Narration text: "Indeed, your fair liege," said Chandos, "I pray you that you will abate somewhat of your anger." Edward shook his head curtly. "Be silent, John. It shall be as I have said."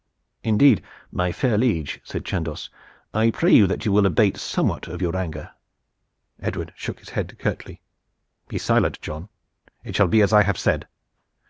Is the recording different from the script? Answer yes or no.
yes